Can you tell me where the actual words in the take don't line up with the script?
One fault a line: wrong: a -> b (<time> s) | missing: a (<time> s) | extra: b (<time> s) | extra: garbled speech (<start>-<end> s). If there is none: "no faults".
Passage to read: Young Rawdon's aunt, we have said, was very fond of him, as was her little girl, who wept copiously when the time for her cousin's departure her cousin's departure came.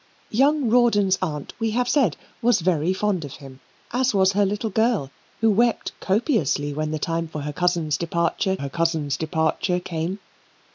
no faults